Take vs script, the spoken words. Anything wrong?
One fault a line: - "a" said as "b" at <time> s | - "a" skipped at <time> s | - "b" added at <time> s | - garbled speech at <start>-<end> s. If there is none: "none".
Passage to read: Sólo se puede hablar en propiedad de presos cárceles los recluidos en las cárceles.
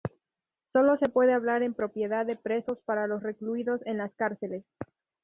- "cárceles" said as "para" at 2.8 s